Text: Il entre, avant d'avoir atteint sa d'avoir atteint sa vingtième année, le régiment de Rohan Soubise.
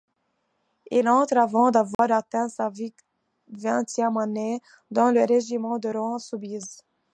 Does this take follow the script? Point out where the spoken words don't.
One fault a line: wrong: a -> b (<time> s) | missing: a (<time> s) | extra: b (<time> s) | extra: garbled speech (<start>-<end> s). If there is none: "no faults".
missing: d'avoir atteint sa (2.7 s)
extra: dans (4.9 s)